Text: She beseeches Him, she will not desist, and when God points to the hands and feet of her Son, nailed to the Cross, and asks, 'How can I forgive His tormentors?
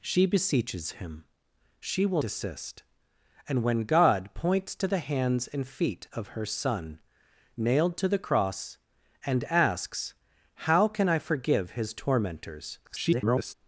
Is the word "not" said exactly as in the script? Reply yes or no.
no